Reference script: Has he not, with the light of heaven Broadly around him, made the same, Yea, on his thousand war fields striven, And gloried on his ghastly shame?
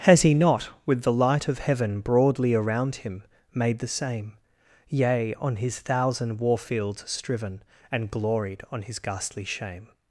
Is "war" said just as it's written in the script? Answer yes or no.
yes